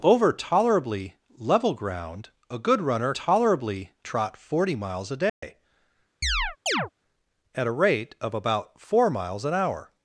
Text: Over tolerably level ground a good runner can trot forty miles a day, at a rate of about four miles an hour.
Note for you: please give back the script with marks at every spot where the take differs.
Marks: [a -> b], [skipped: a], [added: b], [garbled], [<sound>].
Over tolerably level ground a good runner [can -> tolerably] trot forty miles a day, [dropout] [chirp] at a rate of about four miles an hour.